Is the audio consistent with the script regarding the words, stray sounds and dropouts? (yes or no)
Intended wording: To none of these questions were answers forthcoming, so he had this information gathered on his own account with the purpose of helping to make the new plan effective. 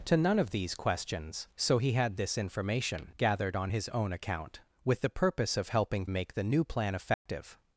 no